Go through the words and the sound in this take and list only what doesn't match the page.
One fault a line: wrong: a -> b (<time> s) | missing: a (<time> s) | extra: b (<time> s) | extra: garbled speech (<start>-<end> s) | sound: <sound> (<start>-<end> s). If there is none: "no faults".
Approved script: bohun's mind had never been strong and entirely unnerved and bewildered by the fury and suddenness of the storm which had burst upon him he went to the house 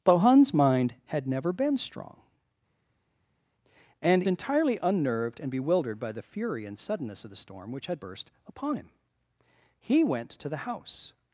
no faults